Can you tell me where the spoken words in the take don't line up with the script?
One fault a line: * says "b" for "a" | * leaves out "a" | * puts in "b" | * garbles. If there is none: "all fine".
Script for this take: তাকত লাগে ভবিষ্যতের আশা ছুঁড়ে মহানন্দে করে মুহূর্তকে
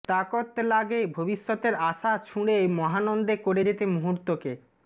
* puts in "যেতে"